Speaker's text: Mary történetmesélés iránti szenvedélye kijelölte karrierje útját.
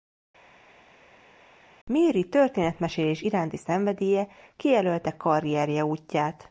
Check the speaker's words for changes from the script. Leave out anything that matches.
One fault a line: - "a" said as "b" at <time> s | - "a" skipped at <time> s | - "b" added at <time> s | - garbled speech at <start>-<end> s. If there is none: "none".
none